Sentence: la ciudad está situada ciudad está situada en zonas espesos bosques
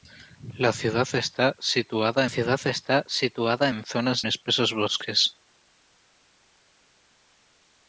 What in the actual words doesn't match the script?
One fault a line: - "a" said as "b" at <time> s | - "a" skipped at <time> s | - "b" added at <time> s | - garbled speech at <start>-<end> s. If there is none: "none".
none